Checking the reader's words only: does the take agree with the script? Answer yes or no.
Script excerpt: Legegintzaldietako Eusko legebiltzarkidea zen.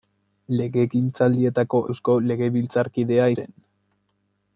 yes